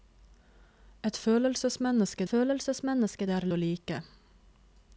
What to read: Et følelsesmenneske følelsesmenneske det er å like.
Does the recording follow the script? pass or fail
pass